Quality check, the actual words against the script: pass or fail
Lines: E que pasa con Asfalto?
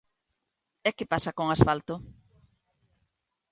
pass